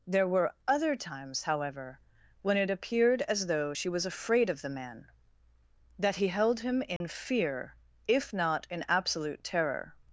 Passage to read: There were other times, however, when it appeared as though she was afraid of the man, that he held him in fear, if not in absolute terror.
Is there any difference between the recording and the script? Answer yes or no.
no